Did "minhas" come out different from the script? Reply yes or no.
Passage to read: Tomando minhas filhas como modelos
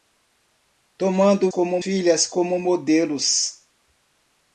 yes